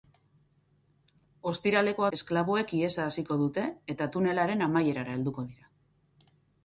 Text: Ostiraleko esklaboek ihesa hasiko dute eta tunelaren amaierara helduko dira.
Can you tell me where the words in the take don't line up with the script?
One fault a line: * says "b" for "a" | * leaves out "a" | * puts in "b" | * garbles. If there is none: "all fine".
all fine